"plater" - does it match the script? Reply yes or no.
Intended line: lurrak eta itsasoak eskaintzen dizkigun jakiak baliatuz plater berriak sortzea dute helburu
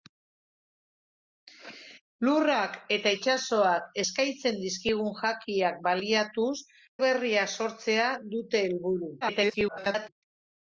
no